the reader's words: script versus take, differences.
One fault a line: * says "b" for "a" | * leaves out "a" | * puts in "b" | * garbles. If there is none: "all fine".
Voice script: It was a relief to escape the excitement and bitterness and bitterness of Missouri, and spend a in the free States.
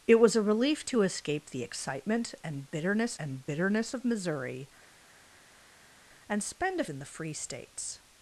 all fine